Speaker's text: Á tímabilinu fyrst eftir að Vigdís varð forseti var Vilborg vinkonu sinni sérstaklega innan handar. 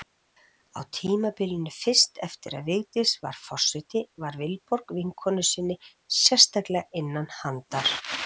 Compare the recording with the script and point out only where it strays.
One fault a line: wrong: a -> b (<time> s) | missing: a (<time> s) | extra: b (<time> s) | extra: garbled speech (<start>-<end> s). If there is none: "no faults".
no faults